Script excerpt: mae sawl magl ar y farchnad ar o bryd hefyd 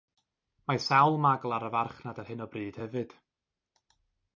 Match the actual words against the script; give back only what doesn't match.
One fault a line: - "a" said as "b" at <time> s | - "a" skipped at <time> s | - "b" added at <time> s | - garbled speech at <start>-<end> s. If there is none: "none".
- "hyn" added at 2.3 s